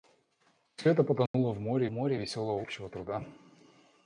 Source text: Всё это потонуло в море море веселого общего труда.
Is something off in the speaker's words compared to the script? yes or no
no